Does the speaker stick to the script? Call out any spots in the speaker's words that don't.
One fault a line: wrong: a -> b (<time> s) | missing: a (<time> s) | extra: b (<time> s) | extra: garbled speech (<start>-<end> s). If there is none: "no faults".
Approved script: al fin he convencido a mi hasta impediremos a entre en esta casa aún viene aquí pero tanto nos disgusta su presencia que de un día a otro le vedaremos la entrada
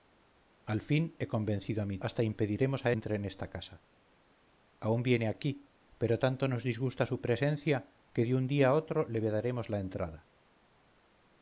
no faults